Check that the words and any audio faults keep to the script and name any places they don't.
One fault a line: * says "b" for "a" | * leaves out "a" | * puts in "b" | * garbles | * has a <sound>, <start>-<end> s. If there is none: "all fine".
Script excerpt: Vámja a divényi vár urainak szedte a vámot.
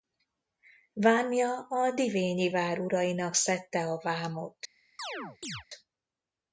* has a chirp, 5.0-5.6 s